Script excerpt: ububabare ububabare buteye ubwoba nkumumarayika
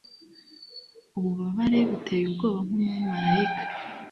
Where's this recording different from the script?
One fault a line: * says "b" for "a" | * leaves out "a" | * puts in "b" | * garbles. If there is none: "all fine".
* leaves out "ububabare"